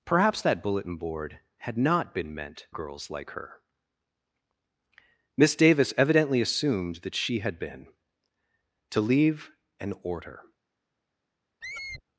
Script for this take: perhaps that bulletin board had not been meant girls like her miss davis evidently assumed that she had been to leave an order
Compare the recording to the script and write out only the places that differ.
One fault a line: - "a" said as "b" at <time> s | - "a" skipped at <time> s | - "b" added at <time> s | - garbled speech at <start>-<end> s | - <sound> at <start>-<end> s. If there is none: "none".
- squeak at 11.6-12.0 s